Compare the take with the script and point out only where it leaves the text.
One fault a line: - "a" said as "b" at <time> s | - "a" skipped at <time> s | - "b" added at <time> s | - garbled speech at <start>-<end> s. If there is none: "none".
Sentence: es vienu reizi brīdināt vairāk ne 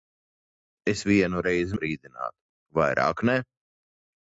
none